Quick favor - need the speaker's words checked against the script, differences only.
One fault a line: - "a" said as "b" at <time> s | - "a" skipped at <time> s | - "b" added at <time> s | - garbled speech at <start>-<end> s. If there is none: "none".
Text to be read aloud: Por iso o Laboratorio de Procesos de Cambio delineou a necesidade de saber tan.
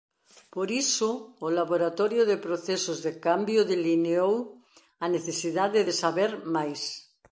- "tan" said as "máis" at 6.5 s